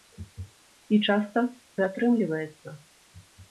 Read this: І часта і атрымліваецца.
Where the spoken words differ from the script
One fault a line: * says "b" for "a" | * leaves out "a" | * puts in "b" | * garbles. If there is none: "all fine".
all fine